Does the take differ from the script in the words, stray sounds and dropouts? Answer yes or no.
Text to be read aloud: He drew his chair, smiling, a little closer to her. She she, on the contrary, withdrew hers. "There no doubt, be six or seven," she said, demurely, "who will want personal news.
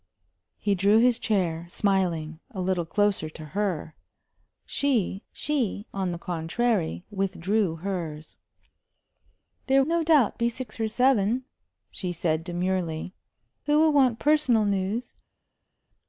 no